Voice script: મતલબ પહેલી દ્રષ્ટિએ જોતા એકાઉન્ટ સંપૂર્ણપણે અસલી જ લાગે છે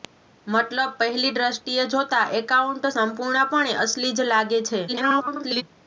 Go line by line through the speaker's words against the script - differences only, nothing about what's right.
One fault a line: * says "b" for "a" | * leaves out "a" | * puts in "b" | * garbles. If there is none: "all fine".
* garbles